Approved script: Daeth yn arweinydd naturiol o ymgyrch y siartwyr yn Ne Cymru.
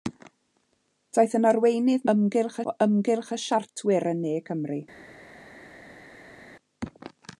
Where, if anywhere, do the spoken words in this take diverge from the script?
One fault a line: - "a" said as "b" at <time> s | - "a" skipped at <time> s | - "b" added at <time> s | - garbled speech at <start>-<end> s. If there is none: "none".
- "naturiol" said as "ymgyrch" at 2.1 s